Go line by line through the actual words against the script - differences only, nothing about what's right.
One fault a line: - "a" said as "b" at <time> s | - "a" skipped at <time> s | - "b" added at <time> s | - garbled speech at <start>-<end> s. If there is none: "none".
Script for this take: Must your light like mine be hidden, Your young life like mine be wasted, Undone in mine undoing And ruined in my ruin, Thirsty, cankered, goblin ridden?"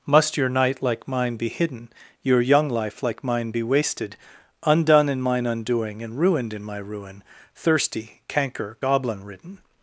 - "light" said as "night" at 0.5 s
- "cankered" said as "canker" at 8.3 s